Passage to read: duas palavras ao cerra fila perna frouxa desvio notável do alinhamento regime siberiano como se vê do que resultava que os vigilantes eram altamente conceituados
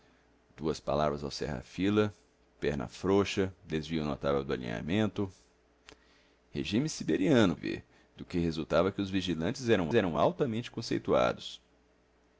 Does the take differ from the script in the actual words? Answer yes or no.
yes